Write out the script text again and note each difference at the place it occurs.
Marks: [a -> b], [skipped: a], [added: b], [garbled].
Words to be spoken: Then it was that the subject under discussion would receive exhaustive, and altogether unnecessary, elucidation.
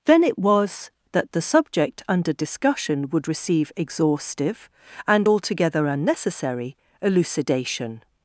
Then it was that the subject under discussion would receive exhaustive, and altogether unnecessary, elucidation.